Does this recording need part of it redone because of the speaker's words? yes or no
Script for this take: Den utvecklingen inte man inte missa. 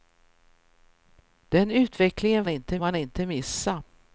no